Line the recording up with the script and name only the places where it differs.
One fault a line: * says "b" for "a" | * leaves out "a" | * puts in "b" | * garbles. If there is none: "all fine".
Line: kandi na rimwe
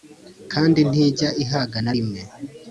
* puts in "ntijya ihaga"